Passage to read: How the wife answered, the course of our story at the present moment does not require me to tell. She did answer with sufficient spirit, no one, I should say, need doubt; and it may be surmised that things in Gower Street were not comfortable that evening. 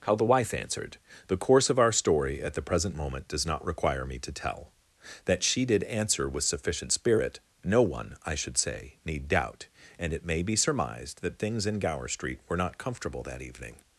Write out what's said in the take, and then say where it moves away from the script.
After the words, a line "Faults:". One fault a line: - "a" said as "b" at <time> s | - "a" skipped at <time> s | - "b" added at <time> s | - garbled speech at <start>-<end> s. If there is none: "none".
How the wife answered, the course of our story at the present moment does not require me to tell. That she did answer with sufficient spirit, no one, I should say, need doubt; and it may be surmised that things in Gower Street were not comfortable that evening.
Faults:
- "That" added at 5.3 s